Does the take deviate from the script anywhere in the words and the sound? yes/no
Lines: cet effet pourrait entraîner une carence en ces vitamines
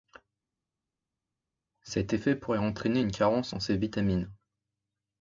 no